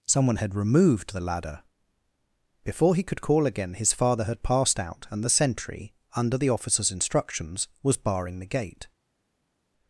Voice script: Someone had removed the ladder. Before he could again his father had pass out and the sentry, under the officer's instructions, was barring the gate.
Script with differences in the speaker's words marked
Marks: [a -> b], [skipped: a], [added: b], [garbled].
Someone had removed the ladder. Before he could [added: call] again his father had [pass -> passed] out and the sentry, under the officer's instructions, was barring the gate.